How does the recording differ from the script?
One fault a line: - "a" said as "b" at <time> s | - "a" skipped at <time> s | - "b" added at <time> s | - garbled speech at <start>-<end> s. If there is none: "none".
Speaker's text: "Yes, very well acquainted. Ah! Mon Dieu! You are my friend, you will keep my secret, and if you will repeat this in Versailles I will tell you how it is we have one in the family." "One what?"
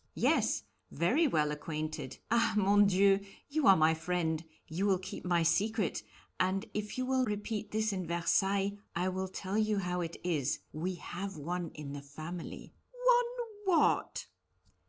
none